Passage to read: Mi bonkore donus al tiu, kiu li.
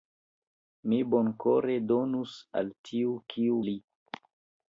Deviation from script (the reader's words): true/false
false